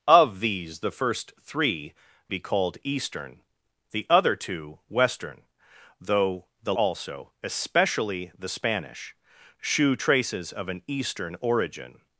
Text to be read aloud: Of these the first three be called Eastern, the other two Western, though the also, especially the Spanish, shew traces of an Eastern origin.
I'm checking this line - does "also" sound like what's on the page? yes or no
yes